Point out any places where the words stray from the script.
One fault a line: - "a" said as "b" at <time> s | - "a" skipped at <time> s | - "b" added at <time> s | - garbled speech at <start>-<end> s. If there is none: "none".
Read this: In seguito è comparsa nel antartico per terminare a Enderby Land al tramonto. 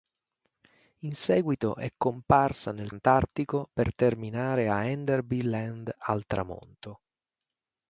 none